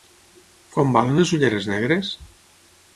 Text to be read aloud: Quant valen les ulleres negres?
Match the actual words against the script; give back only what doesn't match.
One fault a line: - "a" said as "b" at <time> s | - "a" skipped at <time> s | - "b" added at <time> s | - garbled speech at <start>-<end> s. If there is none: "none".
none